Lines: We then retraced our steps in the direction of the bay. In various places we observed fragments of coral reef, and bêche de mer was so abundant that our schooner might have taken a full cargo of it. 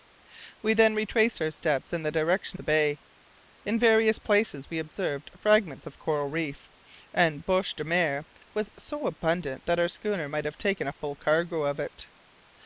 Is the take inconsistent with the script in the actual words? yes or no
yes